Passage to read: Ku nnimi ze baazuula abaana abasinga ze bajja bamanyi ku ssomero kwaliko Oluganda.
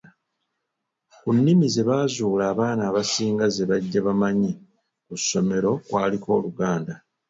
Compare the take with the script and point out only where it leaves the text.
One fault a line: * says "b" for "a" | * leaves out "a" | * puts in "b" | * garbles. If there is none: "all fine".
all fine